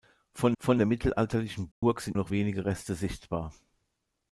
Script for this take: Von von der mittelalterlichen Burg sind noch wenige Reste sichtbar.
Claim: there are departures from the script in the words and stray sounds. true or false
true